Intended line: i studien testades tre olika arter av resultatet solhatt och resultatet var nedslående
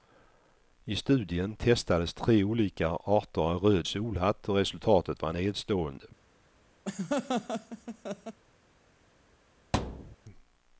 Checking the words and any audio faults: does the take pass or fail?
fail